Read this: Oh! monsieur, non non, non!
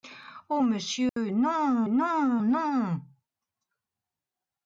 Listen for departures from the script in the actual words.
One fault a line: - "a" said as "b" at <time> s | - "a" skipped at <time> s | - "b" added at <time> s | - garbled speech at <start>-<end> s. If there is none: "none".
none